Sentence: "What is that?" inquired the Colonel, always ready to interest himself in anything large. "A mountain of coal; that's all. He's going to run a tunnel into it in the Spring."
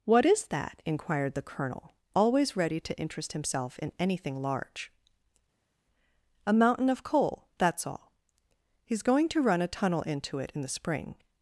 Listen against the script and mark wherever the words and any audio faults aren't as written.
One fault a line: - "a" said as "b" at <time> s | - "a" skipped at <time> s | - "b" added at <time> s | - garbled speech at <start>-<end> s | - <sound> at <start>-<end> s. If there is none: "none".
none